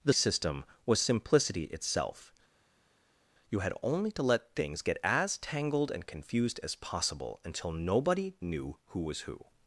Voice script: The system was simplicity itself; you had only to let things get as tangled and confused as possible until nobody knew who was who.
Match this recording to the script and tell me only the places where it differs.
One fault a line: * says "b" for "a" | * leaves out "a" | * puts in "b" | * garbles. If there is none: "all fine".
all fine